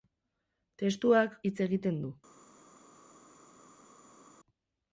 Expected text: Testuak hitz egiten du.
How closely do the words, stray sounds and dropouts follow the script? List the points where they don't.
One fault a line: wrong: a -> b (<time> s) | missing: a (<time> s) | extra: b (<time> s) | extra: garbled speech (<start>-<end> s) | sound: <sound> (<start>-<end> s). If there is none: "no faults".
no faults